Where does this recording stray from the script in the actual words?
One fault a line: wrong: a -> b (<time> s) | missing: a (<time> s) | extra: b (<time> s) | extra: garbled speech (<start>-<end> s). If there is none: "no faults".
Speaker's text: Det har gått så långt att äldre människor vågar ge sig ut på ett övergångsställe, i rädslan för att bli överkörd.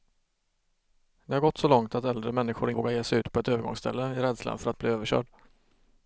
no faults